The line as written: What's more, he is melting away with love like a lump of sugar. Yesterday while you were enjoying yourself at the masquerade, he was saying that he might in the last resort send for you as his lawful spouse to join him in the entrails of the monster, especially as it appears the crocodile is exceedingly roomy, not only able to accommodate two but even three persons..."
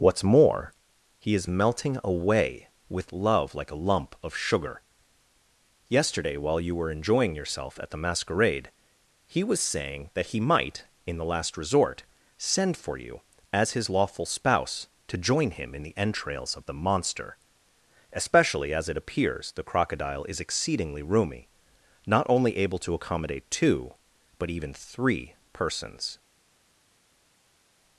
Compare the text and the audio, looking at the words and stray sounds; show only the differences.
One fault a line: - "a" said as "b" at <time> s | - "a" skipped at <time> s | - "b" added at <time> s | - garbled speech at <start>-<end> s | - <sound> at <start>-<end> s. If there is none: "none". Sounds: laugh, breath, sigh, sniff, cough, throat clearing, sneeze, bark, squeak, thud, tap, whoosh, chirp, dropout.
none